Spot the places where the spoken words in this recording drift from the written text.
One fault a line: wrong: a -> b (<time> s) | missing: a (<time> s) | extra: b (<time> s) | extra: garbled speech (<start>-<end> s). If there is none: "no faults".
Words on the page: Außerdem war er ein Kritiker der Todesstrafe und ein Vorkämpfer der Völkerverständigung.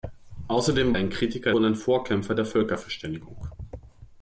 missing: war (0.9 s)
missing: der Todesstrafe (1.5 s)